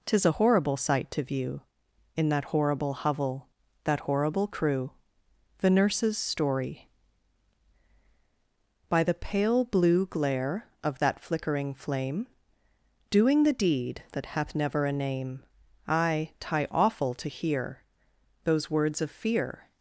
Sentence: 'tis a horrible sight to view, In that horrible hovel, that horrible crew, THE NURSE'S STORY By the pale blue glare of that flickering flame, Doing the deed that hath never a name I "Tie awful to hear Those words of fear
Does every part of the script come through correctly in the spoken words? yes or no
yes